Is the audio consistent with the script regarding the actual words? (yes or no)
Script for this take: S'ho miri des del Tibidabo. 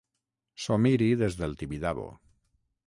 yes